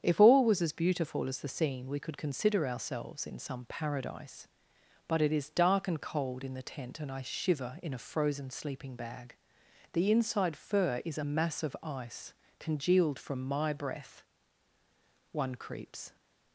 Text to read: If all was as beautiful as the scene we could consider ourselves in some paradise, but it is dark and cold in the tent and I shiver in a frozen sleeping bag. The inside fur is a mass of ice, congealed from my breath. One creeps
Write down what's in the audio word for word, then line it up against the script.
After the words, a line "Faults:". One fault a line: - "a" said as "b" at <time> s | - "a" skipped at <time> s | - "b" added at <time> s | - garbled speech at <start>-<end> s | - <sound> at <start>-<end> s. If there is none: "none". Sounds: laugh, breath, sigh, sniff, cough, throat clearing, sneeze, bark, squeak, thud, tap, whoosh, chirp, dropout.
If all was as beautiful as the scene we could consider ourselves in some paradise, but it is dark and cold in the tent and I shiver in a frozen sleeping bag. The inside fur is a mass of ice, congealed from my breath. One creeps
Faults:
none